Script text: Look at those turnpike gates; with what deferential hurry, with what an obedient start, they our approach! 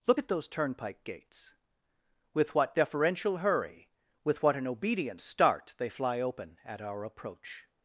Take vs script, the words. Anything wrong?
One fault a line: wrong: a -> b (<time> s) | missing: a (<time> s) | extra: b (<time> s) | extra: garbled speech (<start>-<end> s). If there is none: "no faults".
extra: fly open at (5.9 s)